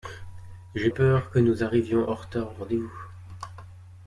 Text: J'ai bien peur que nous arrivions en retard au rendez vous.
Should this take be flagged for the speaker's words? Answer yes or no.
yes